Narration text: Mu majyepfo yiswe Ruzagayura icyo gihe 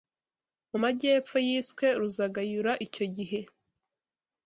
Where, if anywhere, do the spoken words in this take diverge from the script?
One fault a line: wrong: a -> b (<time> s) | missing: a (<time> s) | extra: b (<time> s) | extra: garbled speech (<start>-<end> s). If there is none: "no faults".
no faults